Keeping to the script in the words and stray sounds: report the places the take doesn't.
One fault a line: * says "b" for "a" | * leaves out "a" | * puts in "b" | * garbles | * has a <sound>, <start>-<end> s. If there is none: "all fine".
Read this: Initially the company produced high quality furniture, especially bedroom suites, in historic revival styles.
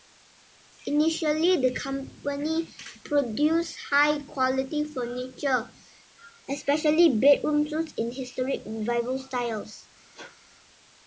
* has a sneeze, 10.1-10.4 s